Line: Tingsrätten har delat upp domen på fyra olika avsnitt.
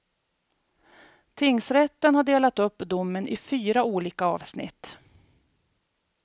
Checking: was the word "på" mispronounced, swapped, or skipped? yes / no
yes